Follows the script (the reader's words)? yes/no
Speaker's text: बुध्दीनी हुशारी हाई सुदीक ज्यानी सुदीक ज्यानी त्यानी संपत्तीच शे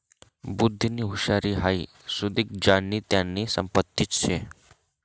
no